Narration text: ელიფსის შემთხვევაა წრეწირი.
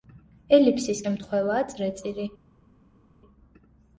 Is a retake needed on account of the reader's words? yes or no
no